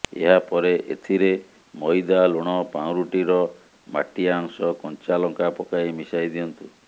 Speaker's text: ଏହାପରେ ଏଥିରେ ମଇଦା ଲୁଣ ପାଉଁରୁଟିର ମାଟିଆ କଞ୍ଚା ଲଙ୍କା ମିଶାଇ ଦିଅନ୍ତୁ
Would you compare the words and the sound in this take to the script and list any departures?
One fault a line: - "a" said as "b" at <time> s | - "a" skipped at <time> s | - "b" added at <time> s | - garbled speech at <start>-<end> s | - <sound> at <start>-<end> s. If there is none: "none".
- "ଅଂଶ" added at 4.4 s
- "ପକାଇ" added at 5.6 s